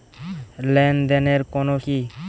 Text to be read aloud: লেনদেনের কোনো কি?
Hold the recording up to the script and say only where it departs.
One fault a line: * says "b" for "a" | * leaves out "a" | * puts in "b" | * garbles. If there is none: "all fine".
all fine